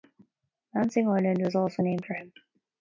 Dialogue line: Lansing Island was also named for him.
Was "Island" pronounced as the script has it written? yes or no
yes